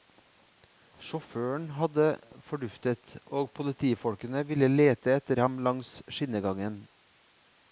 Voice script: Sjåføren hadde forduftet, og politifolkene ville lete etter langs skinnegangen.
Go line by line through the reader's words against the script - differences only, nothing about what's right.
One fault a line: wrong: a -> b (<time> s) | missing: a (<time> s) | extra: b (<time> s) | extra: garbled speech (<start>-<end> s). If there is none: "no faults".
extra: ham (5.4 s)